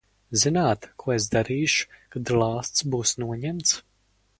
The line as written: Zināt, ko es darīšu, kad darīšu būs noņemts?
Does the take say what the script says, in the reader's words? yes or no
no